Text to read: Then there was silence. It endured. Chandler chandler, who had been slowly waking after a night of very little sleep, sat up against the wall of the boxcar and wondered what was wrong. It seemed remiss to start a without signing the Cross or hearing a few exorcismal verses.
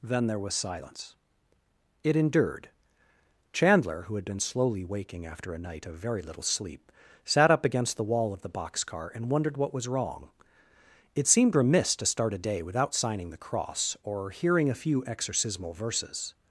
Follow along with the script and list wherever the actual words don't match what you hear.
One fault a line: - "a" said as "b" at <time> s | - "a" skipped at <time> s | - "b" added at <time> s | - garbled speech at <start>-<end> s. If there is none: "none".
- "chandler" skipped at 4.0 s
- "day" added at 12.4 s